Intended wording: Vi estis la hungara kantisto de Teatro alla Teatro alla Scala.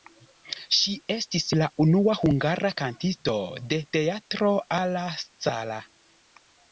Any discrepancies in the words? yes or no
yes